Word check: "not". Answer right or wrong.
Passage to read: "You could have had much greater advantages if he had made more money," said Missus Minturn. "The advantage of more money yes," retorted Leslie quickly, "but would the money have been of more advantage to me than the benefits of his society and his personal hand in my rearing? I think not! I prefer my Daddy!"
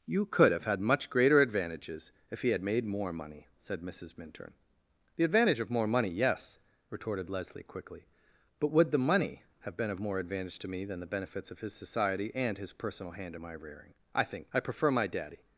wrong